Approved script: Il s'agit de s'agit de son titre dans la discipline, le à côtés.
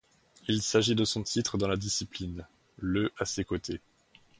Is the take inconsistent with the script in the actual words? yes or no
yes